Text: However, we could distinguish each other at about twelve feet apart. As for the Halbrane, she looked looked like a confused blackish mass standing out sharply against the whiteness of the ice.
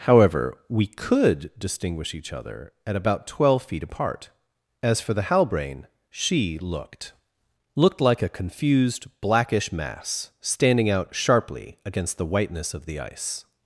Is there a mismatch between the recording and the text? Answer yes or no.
no